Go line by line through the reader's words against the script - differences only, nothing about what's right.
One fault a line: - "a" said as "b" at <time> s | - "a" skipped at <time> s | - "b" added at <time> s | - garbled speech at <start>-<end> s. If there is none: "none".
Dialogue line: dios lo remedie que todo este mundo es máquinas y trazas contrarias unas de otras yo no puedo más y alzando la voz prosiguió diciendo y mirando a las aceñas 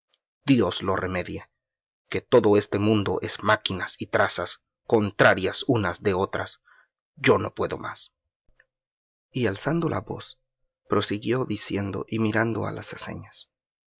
none